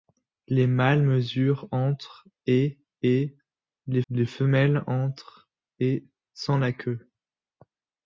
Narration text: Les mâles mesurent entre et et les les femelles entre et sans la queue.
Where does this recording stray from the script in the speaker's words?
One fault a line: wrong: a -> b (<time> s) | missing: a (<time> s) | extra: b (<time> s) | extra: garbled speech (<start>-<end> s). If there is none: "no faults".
no faults